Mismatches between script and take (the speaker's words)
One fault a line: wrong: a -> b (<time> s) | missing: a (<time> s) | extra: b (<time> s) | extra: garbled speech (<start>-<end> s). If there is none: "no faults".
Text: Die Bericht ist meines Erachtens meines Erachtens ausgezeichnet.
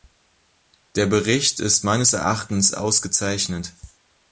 wrong: Die -> Der (0.9 s)
missing: meines Erachtens (2.7 s)